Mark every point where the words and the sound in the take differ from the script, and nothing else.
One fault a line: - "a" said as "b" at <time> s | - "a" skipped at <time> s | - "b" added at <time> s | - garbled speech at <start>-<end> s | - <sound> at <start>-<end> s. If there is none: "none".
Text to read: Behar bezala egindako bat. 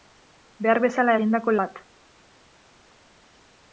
none